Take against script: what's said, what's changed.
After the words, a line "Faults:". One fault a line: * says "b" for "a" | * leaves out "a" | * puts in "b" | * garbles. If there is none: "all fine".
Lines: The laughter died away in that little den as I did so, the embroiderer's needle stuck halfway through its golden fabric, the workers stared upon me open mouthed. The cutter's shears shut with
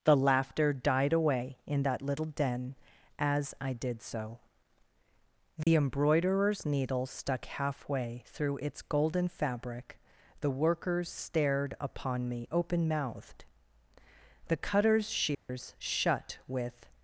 The laughter died away in that little den as I did so, the embroiderer's needle stuck halfway through its golden fabric, the workers stared upon me open mouthed. The cutter's shears shut with
Faults:
all fine